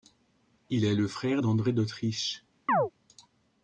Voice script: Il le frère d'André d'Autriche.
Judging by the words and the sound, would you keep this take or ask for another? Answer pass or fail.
fail